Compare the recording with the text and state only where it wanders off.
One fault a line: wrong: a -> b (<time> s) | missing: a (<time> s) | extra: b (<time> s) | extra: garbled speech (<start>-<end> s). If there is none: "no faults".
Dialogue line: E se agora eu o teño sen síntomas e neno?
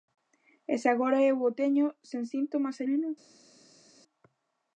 no faults